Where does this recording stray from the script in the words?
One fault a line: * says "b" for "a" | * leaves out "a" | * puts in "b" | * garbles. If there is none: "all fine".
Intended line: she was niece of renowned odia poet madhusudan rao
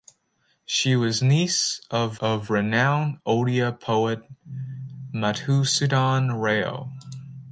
* puts in "of"